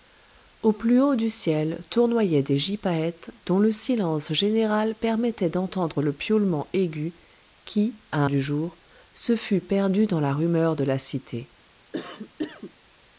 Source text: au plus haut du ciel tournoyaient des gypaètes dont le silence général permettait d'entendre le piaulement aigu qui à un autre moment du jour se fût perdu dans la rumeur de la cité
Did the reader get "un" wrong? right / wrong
wrong